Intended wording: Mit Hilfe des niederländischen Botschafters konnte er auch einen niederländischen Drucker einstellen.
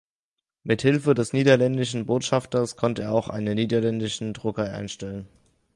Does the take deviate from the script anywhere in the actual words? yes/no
no